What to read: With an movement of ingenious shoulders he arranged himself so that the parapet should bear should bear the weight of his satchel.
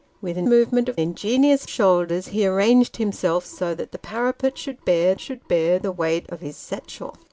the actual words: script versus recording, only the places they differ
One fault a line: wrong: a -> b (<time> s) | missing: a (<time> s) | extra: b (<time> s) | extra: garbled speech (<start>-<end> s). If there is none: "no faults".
no faults